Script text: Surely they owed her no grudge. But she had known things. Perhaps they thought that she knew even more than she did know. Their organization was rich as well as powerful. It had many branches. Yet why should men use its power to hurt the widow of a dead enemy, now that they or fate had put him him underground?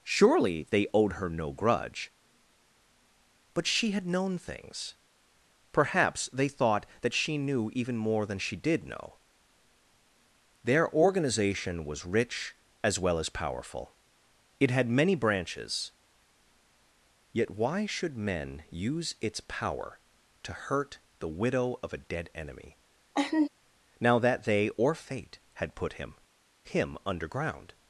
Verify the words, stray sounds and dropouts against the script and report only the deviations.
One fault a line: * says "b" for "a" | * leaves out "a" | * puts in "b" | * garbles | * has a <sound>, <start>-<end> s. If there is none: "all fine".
* has a laugh, 23.1-23.5 s